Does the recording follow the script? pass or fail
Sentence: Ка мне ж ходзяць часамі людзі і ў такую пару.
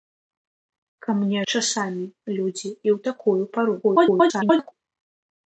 fail